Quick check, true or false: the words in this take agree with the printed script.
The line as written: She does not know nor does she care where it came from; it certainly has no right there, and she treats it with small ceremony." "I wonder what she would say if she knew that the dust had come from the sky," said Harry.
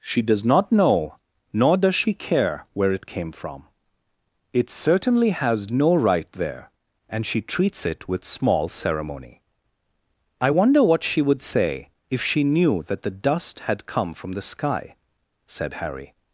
true